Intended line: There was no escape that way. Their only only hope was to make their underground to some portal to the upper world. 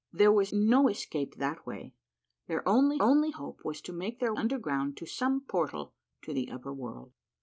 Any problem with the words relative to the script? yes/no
no